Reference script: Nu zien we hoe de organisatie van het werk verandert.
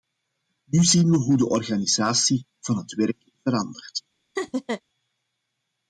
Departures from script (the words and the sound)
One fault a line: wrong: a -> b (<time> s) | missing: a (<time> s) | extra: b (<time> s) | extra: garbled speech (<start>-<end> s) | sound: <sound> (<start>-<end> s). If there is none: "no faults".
sound: laugh (4.4-4.8 s)